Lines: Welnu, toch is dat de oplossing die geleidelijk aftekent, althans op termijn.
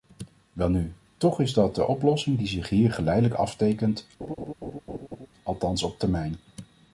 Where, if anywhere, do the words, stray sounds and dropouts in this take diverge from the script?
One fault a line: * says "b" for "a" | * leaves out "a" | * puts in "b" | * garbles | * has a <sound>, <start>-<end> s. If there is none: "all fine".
* puts in "zich hier"
* has a laugh, 4.2-5.3 s